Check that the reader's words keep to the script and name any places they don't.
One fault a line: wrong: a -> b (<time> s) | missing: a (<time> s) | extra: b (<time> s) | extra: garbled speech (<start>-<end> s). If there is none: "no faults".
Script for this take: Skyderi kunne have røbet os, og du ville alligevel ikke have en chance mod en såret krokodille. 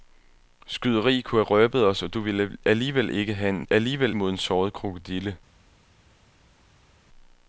wrong: chance -> alligevel (3.7 s)